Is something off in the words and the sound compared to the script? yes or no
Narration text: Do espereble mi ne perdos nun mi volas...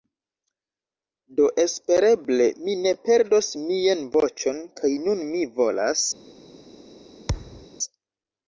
yes